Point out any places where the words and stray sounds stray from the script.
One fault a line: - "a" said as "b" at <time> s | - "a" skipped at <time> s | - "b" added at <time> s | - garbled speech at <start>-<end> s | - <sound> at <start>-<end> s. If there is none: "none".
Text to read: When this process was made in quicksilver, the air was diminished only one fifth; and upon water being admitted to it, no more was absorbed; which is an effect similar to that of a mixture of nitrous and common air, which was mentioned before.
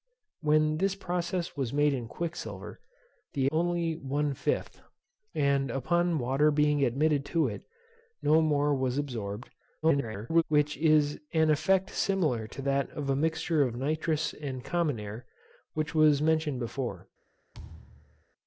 - "air was diminished" skipped at 3.5 s
- garbled speech at 9.8-10.4 s
- thud at 17.5-18.2 s